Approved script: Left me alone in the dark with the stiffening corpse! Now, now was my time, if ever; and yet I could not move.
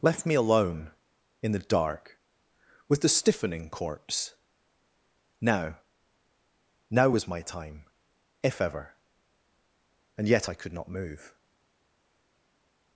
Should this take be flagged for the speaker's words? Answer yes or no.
no